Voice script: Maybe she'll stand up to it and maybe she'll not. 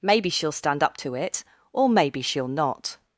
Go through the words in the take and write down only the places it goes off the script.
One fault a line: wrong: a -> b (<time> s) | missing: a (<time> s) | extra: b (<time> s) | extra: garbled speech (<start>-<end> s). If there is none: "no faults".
wrong: and -> or (1.7 s)